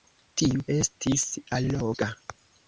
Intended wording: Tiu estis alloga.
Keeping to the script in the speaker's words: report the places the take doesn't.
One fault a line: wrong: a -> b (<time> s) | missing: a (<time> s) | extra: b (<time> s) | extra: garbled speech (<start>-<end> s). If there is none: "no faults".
no faults